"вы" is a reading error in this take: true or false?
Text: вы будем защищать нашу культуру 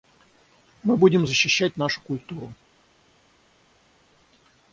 true